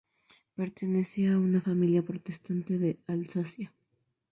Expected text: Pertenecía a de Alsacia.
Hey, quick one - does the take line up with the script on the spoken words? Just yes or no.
no